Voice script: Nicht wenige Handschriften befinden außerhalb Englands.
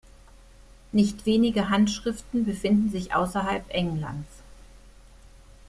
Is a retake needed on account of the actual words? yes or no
yes